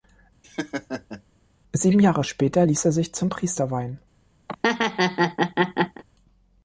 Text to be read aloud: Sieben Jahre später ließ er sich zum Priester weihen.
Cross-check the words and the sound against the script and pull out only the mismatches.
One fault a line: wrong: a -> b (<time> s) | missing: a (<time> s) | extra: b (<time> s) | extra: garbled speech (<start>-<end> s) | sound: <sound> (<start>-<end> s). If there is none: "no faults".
sound: laugh (0.4-1.2 s)
sound: laugh (4.5-6.0 s)